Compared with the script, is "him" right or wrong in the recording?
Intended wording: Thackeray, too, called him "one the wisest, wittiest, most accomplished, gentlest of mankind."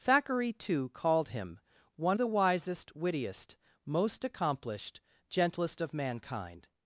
right